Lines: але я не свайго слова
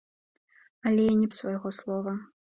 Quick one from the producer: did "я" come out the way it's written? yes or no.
yes